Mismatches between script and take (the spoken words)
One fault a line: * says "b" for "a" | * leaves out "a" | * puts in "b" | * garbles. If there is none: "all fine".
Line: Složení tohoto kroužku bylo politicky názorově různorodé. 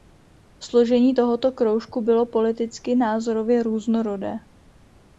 all fine